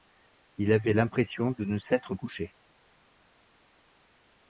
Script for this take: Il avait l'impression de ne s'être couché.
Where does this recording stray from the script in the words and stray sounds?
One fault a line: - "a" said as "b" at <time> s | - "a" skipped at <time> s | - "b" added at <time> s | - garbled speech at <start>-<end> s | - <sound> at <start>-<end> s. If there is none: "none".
none